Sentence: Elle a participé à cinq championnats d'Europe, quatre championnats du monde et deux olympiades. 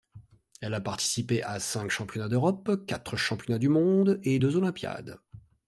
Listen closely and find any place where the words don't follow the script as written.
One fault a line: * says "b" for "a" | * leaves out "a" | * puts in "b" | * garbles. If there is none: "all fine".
all fine